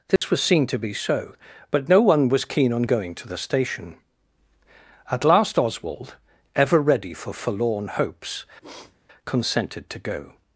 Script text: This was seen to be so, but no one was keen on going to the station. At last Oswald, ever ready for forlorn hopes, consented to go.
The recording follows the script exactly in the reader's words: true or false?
true